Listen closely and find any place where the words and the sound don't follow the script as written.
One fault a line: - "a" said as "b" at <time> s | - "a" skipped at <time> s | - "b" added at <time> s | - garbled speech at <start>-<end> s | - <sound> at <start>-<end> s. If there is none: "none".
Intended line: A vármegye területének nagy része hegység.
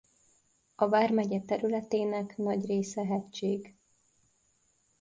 none